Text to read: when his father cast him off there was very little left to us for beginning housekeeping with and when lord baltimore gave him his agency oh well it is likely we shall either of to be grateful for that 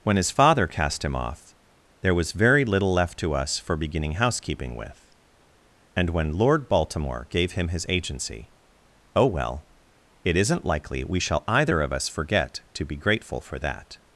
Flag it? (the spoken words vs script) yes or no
yes